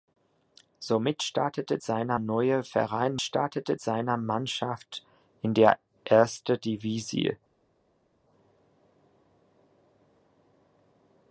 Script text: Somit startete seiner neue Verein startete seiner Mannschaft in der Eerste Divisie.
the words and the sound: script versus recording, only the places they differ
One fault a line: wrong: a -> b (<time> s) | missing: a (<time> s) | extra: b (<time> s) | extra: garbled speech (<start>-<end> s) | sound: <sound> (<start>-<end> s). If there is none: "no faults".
no faults